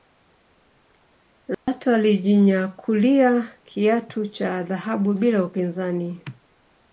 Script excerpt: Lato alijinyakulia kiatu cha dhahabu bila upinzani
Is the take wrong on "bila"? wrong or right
right